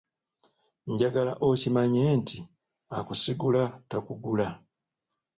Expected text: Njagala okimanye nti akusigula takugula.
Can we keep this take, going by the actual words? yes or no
yes